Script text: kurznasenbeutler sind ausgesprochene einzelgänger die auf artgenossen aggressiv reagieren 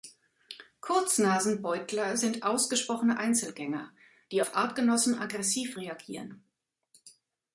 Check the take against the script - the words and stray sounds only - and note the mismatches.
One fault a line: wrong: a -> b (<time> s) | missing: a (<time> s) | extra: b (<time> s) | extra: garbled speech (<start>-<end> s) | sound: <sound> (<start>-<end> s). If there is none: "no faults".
no faults